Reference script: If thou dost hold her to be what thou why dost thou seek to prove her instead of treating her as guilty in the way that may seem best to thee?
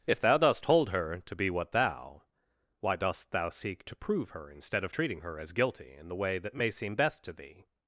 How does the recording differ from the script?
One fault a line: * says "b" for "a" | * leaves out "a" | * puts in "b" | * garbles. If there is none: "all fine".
all fine